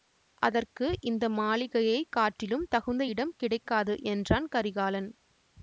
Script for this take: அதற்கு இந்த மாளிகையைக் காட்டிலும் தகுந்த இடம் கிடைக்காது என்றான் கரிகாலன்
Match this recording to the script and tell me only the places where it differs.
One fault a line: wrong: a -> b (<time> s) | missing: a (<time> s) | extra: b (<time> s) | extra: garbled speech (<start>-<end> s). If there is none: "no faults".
no faults